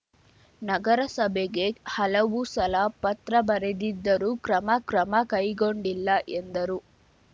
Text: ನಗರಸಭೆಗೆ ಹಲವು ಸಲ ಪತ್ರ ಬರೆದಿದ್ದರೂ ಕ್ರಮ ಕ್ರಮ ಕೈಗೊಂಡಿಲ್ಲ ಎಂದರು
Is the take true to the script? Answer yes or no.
yes